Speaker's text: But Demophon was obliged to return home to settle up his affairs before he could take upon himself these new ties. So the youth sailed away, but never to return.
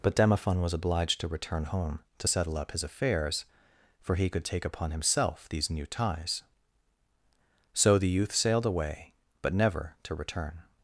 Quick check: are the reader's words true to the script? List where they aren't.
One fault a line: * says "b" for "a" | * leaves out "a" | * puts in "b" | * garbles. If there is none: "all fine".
* says "for" for "before"